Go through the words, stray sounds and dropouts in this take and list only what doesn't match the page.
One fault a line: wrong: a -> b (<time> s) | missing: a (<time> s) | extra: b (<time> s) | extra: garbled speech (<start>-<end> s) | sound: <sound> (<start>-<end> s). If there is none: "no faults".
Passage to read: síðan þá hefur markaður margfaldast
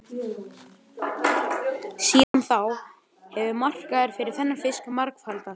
sound: dropout (2.2-2.3 s)
extra: fyrir þennan fisk (4.2 s)